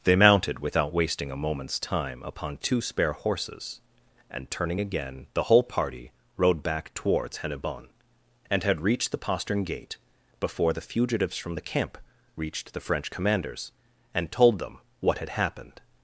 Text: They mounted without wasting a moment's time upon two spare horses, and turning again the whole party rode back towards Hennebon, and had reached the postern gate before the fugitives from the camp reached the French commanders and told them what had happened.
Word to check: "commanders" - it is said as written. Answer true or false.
true